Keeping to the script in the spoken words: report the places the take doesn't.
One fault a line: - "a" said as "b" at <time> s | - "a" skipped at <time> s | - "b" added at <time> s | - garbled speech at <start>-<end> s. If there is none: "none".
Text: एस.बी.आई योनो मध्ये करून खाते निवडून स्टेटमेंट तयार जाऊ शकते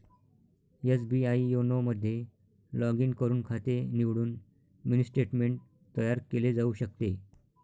- "लॉग इन" added at 2.7 s
- "मिनी" added at 4.8 s
- "केले" added at 6.3 s